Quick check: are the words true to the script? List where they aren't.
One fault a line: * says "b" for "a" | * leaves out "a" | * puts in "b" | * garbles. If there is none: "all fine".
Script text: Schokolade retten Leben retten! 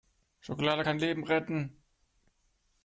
* says "kann" for "retten"